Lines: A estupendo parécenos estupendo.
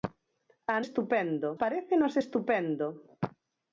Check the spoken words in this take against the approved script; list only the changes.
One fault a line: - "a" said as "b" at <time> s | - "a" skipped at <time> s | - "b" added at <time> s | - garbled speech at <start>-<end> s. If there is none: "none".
none